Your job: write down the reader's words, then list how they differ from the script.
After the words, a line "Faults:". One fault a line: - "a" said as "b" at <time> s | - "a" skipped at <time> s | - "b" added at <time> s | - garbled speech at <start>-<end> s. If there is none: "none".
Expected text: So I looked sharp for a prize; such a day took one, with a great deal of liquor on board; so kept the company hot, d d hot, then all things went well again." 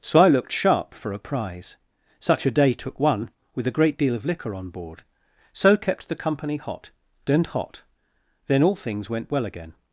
So I looked sharp for a prize; such a day took one, with a great deal of liquor on board; so kept the company hot, and hot, then all things went well again."
Faults:
- "d d" said as "and" at 7.3 s